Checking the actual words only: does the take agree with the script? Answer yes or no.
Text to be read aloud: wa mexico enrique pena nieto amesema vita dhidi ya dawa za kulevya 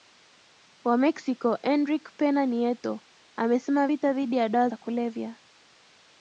yes